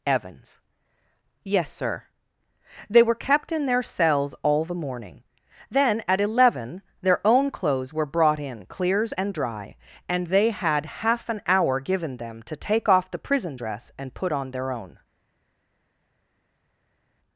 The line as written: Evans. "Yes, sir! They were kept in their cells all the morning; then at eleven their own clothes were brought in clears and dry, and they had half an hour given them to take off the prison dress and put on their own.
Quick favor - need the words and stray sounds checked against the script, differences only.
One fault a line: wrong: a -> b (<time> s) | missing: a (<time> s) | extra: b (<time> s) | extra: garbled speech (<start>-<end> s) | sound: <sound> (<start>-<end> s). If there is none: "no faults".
no faults